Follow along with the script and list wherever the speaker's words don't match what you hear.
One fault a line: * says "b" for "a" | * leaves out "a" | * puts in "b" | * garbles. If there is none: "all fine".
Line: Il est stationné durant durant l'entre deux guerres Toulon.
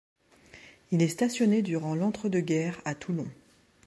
* leaves out "durant"
* puts in "à"